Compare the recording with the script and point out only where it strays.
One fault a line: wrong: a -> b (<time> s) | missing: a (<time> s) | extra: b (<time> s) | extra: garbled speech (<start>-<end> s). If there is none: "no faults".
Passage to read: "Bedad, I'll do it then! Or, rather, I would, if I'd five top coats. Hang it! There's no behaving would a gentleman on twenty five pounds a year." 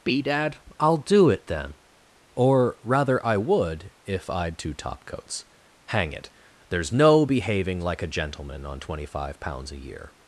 wrong: five -> two (4.6 s)
wrong: would -> like (7.8 s)